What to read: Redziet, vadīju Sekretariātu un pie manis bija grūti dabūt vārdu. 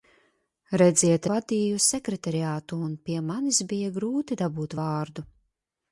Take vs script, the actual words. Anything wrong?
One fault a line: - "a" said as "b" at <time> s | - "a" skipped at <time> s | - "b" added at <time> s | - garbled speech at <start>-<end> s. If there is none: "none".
none